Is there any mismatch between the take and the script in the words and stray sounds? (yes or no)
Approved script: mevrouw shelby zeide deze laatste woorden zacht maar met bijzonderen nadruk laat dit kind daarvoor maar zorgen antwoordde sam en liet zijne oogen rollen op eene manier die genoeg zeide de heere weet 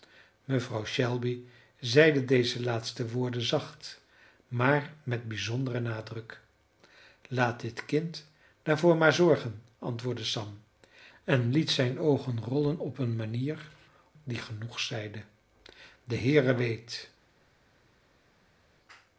no